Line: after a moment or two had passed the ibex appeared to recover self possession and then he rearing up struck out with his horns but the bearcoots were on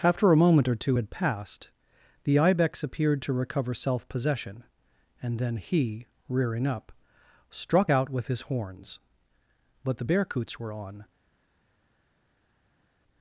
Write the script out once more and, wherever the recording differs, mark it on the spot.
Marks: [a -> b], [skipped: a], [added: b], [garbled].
after a moment or two had passed the ibex appeared to recover self possession and then he rearing up struck out with his horns but the bearcoots were on